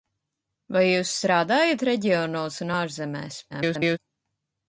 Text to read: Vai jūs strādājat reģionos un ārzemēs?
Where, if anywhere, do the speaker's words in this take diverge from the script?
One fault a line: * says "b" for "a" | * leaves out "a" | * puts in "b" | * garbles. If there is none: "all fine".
* garbles